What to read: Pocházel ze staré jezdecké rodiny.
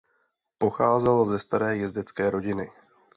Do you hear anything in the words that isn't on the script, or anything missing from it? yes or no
no